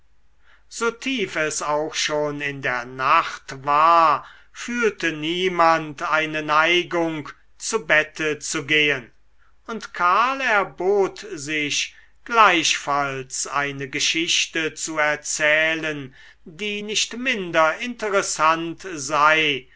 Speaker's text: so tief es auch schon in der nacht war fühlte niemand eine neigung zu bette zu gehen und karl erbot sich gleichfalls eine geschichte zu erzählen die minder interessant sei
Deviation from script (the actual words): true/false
true